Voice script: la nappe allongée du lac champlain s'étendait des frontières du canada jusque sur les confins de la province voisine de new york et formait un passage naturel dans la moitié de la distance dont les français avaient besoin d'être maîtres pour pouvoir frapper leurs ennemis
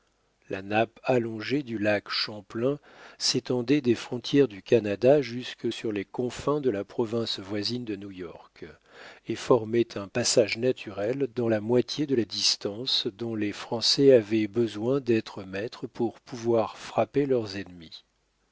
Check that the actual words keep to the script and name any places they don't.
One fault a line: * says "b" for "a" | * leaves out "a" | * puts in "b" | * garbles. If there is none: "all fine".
all fine